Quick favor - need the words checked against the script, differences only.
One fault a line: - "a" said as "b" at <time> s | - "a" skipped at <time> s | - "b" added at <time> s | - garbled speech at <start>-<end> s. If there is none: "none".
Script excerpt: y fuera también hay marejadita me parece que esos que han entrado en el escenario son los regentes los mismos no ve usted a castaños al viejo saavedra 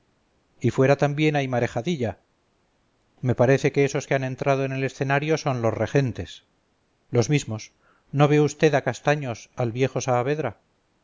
none